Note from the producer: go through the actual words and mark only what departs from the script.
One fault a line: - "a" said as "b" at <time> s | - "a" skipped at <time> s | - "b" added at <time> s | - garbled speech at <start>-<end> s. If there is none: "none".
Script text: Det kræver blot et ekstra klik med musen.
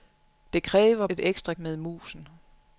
- "blot" skipped at 1.1 s
- "klik" skipped at 1.5 s